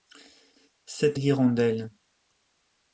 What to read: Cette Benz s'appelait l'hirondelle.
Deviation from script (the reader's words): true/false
true